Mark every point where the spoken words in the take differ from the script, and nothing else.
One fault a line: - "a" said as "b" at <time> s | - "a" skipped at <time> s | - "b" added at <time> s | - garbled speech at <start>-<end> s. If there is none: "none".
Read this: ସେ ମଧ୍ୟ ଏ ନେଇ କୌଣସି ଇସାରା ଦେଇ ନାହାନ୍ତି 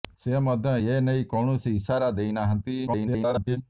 - garbled speech at 2.9-3.6 s